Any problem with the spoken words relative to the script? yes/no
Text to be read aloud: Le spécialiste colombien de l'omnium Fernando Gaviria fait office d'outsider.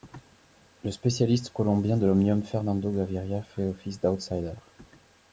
no